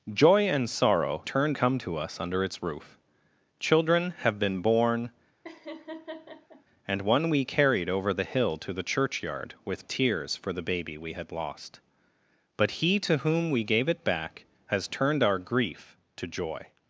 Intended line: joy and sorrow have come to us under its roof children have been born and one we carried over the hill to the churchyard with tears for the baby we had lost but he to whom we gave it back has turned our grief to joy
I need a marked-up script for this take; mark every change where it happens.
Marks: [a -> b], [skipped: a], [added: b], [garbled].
joy and sorrow [have -> turned] come to us under its roof children have been born and one we carried over the hill to the churchyard with tears for the baby we had lost but he to whom we gave it back has turned our grief to joy